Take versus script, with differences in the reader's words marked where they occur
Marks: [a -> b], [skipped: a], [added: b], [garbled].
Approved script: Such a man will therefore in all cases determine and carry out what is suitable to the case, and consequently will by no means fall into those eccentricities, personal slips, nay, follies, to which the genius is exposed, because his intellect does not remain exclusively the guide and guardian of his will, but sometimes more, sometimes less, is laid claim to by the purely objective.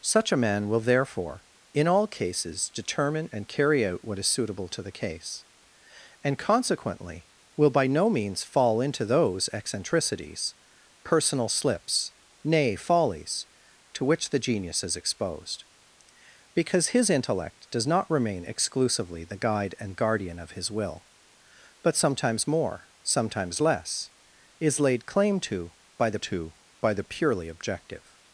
Such a man will therefore in all cases determine and carry out what is suitable to the case, and consequently will by no means fall into those eccentricities, personal slips, nay, follies, to which the genius is exposed, because his intellect does not remain exclusively the guide and guardian of his will, but sometimes more, sometimes less, is laid claim to by the [added: to by the] purely objective.